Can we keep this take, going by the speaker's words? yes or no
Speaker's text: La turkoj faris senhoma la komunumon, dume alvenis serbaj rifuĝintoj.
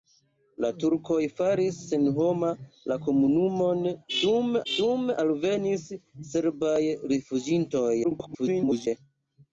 no